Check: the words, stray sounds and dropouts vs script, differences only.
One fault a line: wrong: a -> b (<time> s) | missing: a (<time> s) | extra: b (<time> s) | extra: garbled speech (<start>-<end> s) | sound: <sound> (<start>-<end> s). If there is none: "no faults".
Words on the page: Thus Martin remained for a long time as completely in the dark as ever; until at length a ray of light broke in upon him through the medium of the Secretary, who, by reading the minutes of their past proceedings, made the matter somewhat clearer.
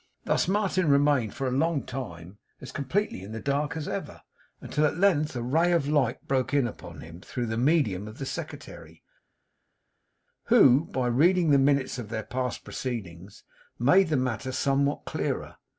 no faults